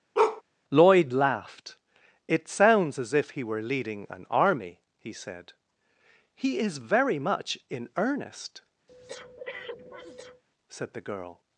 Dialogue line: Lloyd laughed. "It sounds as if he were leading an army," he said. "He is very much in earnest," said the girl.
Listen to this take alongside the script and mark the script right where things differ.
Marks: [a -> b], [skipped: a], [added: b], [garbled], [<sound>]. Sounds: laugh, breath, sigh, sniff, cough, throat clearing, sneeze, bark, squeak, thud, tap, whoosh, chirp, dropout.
[bark] Lloyd laughed. "It sounds as if he were leading an army," he said. "He is very much in earnest," [breath] said the girl.